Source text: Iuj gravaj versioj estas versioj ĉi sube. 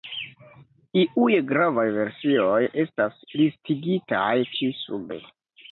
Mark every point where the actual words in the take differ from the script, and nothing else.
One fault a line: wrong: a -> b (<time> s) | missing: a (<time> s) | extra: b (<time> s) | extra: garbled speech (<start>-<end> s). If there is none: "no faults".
wrong: versioj -> listigitaj (3.4 s)